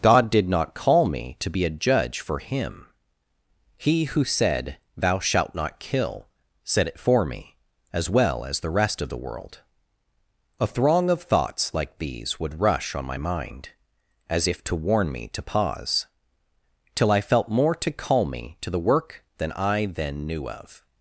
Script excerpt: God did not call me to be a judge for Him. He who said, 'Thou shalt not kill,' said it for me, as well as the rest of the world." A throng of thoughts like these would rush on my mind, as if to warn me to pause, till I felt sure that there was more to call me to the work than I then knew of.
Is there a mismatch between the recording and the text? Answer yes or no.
yes